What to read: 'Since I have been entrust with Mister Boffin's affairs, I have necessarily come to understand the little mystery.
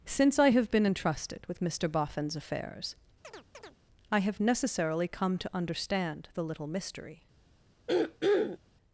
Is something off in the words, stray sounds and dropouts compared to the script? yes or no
yes